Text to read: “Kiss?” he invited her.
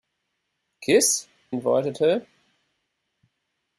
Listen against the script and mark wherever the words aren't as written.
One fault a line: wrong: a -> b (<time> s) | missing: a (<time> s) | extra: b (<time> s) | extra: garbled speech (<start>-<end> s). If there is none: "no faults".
missing: he (1.3 s)